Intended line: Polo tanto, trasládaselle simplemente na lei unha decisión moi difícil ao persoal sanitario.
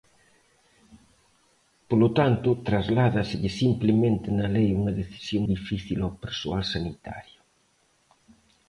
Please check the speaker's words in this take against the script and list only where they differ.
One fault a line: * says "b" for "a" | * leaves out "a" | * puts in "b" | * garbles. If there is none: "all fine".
* leaves out "moi"